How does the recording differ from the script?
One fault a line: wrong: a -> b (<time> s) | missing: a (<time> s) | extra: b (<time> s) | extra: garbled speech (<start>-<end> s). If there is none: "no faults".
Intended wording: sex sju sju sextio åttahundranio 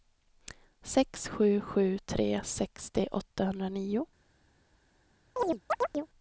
extra: tre (2.1 s)